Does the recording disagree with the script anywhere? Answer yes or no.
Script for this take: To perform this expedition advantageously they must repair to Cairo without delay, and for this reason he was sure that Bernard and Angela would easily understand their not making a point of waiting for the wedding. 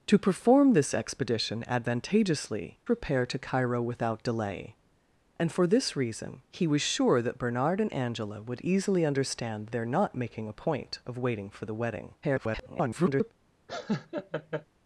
yes